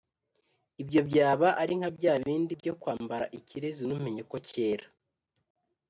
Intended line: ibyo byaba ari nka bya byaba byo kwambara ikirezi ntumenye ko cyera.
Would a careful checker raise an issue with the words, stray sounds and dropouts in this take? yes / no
yes